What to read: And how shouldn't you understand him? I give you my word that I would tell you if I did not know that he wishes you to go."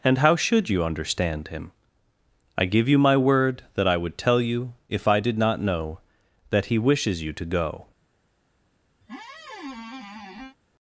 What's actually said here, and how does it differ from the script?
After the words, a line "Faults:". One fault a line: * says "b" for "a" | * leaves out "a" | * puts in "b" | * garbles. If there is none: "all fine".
And how should you understand him? I give you my word that I would tell you if I did not know that he wishes you to go."
Faults:
* says "should" for "shouldn't"